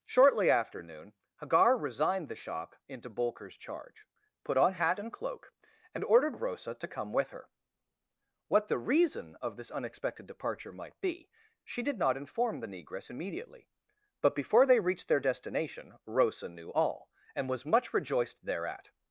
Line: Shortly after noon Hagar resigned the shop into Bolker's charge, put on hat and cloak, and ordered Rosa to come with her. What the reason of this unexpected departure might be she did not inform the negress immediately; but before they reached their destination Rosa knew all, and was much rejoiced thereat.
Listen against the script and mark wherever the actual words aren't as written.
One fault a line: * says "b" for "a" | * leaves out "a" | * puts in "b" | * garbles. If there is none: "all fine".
all fine